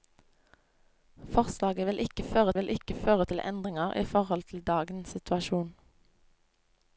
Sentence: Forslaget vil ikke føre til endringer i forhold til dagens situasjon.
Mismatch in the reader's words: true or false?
true